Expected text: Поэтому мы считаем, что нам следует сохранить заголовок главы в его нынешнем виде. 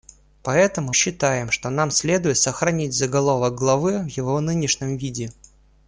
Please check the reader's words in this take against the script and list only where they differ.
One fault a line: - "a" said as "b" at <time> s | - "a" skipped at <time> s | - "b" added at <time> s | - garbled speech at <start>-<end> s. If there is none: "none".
- "мы" skipped at 0.9 s